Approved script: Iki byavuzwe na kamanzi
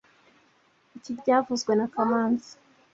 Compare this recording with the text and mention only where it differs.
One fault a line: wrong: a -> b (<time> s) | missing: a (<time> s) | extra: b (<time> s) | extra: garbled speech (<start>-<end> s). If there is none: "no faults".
no faults